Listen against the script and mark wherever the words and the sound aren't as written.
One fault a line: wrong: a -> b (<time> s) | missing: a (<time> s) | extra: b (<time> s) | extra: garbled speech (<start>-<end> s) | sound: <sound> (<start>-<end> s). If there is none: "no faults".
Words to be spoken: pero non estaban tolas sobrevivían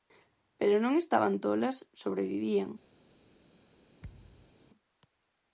sound: thud (4.0-4.6 s)